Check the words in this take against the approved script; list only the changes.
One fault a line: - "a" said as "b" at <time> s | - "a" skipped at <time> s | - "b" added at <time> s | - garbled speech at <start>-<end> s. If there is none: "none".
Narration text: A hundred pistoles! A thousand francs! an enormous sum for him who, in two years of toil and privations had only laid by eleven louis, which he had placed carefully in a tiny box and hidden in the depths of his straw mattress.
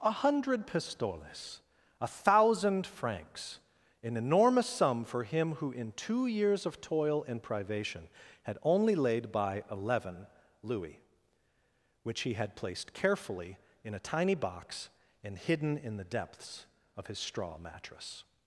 - "privations" said as "privation" at 7.4 s